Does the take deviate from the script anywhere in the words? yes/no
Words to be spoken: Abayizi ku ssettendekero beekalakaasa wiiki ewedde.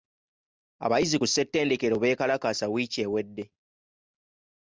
no